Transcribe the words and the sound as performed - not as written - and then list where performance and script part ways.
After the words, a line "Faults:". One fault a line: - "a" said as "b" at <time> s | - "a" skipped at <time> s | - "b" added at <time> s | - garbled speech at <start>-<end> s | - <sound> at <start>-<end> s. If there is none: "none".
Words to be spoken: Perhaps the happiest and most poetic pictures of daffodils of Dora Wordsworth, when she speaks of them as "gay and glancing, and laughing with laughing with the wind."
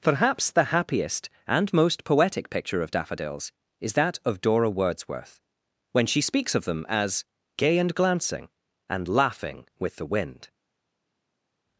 Perhaps the happiest and most poetic picture of daffodils is that of Dora Wordsworth, when she speaks of them as "gay and glancing, and laughing with the wind."
Faults:
- "pictures" said as "picture" at 2.5 s
- "is that" added at 3.8 s
- "laughing with" skipped at 10.0 s